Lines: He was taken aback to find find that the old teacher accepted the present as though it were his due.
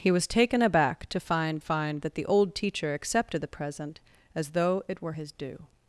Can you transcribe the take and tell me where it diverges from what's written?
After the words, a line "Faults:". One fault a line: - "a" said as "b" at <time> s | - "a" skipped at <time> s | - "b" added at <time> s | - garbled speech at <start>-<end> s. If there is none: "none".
He was taken aback to find find that the old teacher accepted the present as though it were his due.
Faults:
none